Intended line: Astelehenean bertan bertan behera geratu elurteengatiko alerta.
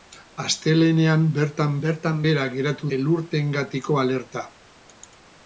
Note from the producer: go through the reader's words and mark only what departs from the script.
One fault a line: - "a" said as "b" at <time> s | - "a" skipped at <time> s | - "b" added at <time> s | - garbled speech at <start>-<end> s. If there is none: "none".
none